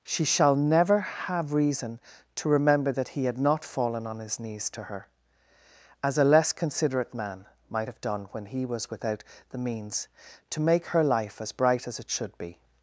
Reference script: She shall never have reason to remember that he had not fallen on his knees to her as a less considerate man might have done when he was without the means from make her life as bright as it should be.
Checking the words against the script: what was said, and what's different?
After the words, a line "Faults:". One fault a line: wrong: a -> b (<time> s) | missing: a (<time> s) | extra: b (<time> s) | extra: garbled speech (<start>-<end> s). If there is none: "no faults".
She shall never have reason to remember that he had not fallen on his knees to her as a less considerate man might have done when he was without the means to make her life as bright as it should be.
Faults:
wrong: from -> to (10.5 s)